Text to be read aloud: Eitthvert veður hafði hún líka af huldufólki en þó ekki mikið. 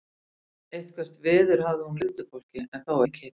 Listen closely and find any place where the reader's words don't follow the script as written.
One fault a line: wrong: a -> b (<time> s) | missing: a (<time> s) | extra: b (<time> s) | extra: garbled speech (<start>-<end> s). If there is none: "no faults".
missing: líka af (2.0 s)
missing: ekki (3.0 s)